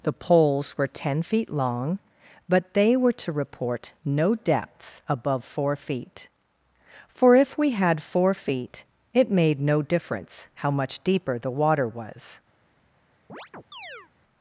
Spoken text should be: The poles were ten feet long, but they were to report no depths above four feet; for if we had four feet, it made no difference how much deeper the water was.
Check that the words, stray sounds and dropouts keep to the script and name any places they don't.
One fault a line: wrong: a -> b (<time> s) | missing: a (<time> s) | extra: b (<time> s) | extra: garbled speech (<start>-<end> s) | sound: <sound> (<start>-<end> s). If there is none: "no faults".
sound: chirp (13.3-14.1 s)